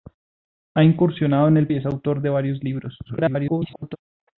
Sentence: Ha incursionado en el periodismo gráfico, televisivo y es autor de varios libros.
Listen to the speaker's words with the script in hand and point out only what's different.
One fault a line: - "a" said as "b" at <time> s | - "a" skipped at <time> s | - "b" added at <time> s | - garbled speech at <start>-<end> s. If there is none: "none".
- "periodismo gráfico televisivo" skipped at 1.7 s
- garbled speech at 3.1-4.0 s